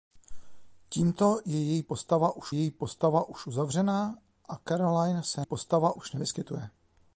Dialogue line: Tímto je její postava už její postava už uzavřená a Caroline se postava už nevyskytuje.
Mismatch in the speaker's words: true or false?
false